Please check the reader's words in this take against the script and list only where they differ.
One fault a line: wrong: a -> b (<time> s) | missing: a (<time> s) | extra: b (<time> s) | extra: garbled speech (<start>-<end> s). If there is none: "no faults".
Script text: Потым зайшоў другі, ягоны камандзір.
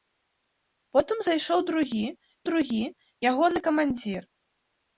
extra: другі (2.5 s)